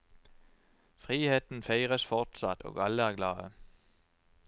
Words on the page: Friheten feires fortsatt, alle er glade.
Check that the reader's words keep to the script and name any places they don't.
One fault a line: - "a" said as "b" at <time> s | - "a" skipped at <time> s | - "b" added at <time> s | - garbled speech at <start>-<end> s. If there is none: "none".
- "og" added at 2.6 s